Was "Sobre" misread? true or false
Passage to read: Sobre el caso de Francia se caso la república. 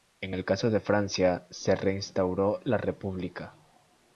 true